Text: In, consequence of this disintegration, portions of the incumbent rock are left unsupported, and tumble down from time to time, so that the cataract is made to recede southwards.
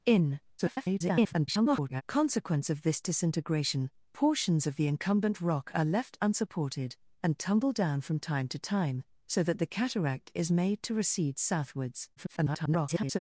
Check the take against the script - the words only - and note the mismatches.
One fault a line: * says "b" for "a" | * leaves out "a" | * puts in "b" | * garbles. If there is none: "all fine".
* garbles
* garbles